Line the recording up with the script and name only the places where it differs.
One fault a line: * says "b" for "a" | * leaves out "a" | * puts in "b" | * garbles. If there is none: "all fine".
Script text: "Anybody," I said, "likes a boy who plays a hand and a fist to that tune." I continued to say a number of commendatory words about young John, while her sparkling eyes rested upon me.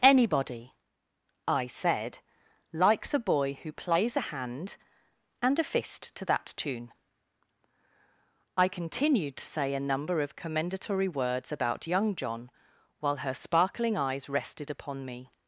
all fine